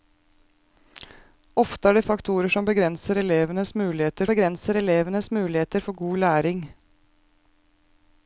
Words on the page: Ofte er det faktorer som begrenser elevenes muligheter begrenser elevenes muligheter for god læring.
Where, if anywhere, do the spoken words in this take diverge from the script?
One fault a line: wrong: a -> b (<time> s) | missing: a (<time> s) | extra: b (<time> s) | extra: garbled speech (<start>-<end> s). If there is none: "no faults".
no faults